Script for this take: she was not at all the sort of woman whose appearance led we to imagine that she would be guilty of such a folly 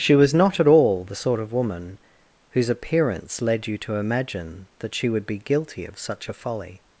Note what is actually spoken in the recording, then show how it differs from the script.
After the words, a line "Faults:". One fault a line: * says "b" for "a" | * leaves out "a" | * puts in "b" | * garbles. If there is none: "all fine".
she was not at all the sort of woman whose appearance led you to imagine that she would be guilty of such a folly
Faults:
* says "you" for "we"